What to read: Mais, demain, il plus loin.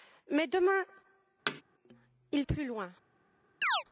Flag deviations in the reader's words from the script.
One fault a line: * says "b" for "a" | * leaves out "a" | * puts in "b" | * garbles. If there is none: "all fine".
all fine